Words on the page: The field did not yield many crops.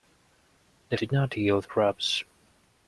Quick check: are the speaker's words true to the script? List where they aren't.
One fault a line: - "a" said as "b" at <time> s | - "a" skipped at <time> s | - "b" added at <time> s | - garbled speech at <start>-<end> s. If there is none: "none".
- "field" skipped at 1.0 s
- "many" skipped at 1.7 s